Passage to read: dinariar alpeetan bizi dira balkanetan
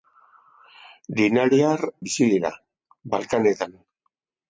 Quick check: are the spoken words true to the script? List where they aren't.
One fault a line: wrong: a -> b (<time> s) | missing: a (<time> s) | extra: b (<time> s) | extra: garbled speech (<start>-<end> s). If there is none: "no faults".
missing: alpeetan (1.8 s)